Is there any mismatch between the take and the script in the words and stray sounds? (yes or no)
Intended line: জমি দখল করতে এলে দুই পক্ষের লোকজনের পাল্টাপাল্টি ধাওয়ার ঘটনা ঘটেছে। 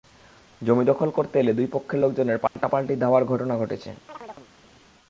yes